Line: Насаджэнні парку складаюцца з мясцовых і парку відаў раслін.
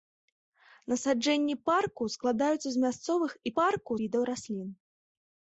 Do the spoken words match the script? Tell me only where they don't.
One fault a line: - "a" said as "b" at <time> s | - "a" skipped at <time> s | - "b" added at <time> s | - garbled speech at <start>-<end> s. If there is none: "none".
none